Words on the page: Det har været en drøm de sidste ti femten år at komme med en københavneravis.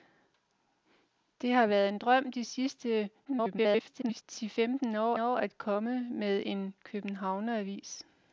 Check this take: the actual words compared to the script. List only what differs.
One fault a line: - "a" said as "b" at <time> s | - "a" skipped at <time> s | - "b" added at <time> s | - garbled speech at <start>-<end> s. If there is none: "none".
- garbled speech at 3.2-4.2 s
- "år" added at 5.2 s